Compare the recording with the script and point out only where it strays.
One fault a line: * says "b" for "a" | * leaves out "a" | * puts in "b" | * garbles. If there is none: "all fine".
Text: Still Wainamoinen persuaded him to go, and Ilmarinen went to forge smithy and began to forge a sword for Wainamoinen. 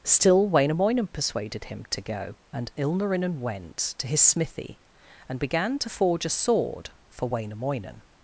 * says "his" for "forge"